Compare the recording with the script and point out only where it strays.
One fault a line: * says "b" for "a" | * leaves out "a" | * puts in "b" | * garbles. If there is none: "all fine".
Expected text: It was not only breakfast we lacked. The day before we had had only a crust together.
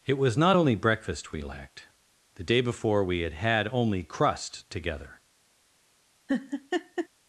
* leaves out "a"